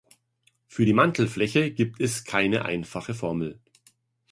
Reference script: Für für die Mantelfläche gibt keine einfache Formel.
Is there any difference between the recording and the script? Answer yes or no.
yes